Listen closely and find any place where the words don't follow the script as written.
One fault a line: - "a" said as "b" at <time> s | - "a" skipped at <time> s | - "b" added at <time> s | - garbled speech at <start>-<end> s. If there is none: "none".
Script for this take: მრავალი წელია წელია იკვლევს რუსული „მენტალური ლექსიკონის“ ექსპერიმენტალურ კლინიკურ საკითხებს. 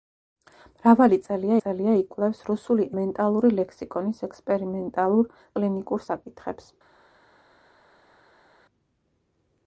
none